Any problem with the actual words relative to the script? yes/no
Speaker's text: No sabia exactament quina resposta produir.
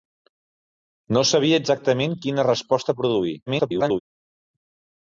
yes